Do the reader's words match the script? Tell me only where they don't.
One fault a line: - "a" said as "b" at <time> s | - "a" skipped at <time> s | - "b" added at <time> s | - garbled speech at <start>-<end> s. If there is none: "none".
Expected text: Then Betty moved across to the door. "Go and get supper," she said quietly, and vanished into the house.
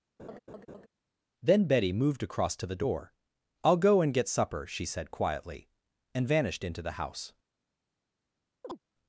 - "I'll" added at 3.6 s